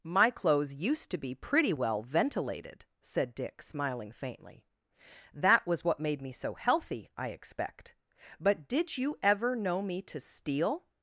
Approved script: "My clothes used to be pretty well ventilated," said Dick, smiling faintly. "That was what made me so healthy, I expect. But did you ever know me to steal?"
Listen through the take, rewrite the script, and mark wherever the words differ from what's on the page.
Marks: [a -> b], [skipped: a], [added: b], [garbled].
"My clothes used to be pretty well ventilated," said Dick, smiling faintly. "That was what made me so healthy, I expect. But did you ever know me to steal?"